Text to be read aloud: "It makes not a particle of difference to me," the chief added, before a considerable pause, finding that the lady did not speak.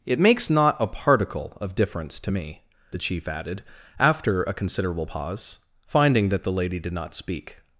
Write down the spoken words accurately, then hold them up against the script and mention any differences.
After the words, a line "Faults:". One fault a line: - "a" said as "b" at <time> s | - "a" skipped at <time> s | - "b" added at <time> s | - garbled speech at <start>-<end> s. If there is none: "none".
"It makes not a particle of difference to me," the chief added, after a considerable pause, finding that the lady did not speak.
Faults:
- "before" said as "after" at 4.0 s